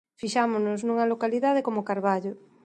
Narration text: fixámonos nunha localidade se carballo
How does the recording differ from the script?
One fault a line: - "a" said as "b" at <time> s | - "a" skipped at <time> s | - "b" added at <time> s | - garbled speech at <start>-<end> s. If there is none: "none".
- "se" said as "como" at 1.7 s